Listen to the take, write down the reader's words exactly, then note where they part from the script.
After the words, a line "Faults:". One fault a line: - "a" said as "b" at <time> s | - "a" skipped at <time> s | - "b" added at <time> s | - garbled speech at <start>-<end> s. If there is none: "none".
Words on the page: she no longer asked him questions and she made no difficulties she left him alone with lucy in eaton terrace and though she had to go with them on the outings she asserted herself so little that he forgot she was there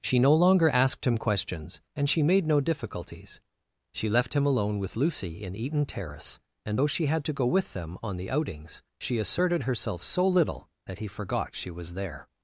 she no longer asked him questions and she made no difficulties she left him alone with lucy in eaton terrace and though she had to go with them on the outings she asserted herself so little that he forgot she was there
Faults:
none